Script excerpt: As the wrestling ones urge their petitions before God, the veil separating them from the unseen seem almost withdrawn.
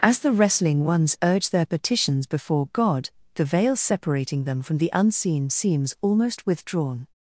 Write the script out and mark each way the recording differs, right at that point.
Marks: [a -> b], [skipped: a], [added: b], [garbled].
As the wrestling ones urge their petitions before God, the veil separating them from the unseen [seem -> seems] almost withdrawn.